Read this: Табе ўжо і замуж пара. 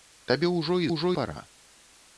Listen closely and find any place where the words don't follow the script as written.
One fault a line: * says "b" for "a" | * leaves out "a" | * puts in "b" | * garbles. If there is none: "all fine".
* says "ўжо" for "замуж"